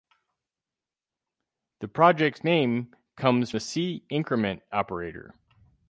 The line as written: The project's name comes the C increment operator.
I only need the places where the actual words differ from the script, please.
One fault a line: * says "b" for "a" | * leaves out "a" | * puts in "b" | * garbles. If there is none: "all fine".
all fine